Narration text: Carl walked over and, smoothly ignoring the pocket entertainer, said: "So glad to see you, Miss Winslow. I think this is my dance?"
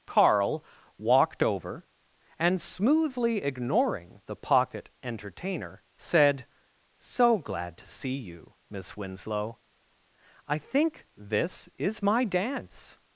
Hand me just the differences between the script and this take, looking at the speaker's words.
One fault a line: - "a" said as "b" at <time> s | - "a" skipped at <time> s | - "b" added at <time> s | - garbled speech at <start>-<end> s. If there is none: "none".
none